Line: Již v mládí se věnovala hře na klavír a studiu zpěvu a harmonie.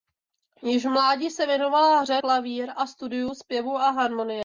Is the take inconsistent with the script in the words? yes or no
yes